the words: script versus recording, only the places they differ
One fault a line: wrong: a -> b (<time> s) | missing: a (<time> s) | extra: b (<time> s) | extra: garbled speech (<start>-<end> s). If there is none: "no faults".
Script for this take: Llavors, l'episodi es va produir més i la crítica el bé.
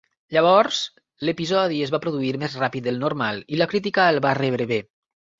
extra: ràpid del normal (2.6 s)
extra: va rebre (4.3 s)